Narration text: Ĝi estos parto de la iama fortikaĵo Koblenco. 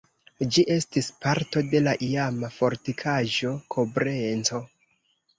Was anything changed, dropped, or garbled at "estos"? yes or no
yes